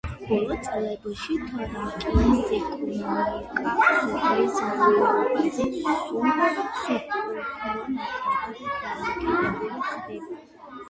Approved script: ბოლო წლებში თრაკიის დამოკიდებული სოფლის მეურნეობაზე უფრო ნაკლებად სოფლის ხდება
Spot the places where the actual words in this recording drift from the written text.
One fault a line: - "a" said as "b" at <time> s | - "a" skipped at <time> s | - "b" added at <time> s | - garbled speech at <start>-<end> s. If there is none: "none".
- "დამოკიდებული" said as "ეკონომიკა" at 2.6 s
- "სულ" added at 6.8 s
- "სოფლის" said as "დამოკიდებული" at 8.9 s